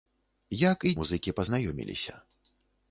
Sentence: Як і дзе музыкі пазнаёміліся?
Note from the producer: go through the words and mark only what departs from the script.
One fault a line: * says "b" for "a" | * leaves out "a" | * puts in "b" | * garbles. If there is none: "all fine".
* leaves out "дзе"